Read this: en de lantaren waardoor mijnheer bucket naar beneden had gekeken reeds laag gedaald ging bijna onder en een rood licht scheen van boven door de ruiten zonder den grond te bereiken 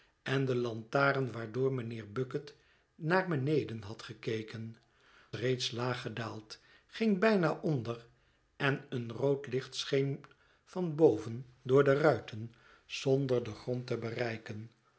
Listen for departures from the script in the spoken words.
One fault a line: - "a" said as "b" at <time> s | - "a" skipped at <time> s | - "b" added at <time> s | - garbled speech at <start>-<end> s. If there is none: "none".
none